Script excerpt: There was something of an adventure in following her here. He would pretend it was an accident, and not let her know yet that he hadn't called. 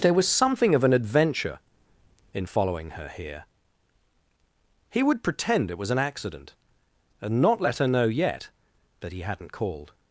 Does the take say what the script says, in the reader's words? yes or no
yes